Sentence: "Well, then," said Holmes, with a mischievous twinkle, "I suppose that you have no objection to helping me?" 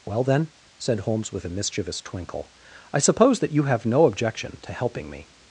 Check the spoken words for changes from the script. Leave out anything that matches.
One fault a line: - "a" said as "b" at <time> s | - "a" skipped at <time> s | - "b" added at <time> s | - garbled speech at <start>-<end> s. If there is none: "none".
none